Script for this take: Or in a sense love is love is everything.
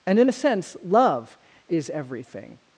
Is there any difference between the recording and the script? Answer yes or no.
yes